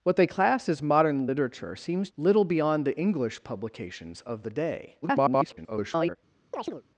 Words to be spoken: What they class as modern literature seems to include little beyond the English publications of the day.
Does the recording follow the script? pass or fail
fail